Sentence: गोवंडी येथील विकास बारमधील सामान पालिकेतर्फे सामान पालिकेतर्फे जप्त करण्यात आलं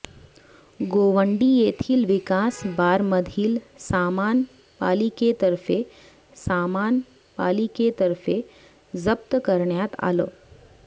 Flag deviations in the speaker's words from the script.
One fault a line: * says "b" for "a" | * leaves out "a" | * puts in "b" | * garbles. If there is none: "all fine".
all fine